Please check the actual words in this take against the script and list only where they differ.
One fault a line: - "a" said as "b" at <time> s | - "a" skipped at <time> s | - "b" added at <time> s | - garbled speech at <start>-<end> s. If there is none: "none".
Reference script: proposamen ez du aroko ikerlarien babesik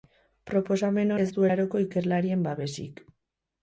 none